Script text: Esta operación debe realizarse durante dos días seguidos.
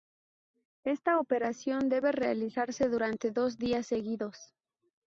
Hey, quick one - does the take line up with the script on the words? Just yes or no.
yes